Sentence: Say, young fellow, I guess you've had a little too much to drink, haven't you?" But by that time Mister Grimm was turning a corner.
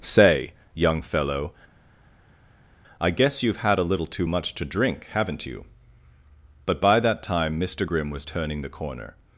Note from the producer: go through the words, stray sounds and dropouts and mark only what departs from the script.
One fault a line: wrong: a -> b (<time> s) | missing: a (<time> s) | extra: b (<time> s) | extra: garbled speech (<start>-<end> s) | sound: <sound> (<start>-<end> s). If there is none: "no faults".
wrong: a -> the (8.6 s)